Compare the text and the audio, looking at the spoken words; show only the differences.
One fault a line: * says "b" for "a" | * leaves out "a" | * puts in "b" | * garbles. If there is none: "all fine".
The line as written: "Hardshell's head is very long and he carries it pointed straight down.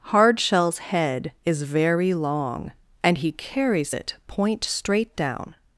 * says "point" for "pointed"